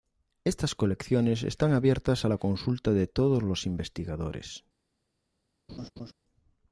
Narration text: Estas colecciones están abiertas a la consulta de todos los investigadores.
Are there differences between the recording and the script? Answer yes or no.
no